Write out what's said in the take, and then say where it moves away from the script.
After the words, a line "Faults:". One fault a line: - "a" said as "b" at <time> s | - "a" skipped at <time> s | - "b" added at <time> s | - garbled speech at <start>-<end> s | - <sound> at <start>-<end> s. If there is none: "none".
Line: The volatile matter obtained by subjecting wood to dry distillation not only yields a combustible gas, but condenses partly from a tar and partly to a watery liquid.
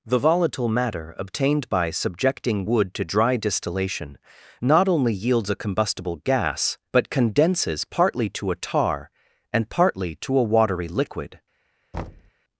The volatile matter obtained by subjecting wood to dry distillation not only yields a combustible gas, but condenses partly to a tar and partly to a watery liquid.
Faults:
- "from" said as "to" at 8.3 s
- thud at 11.9-12.3 s